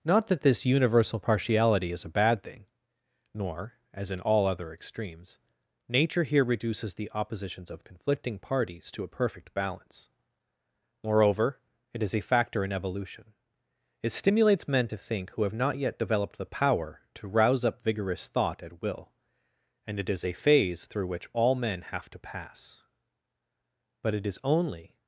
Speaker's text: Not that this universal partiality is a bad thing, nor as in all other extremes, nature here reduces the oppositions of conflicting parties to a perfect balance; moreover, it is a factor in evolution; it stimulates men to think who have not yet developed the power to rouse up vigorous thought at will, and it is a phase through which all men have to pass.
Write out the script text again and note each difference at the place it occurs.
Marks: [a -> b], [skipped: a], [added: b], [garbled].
Not that this universal partiality is a bad thing, nor as in all other extremes, nature here reduces the oppositions of conflicting parties to a perfect balance; moreover, it is a factor in evolution; it stimulates men to think who have not yet developed the power to rouse up vigorous thought at will, and it is a phase through which all men have to pass. [added: But it is only]